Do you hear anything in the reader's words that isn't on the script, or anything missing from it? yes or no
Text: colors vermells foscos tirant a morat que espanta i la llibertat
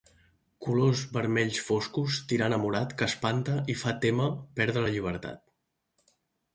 yes